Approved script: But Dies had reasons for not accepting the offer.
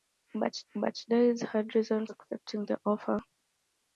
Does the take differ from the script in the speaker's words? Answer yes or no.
yes